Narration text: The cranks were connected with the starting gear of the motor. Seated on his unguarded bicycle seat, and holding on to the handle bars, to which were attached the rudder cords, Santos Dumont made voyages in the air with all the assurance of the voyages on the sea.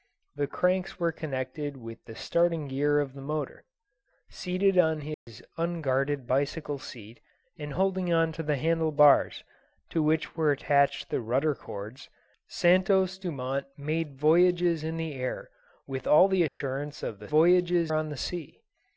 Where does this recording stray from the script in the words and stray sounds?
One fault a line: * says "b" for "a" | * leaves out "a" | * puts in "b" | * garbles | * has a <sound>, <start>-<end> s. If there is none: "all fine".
* has a dropout, 5.1-5.3 s
* has a dropout, 16.5-16.6 s